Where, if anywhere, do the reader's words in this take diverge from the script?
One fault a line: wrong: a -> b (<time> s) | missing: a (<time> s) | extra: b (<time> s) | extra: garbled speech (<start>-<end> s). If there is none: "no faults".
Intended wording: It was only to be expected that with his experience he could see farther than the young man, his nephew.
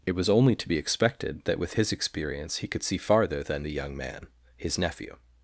no faults